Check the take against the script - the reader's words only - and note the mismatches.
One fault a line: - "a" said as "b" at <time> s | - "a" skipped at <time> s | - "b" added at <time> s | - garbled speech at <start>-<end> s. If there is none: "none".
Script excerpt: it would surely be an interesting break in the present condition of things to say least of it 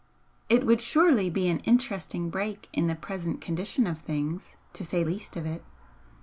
none